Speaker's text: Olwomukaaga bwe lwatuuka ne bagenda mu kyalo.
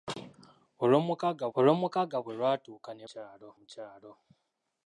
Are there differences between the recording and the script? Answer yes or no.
yes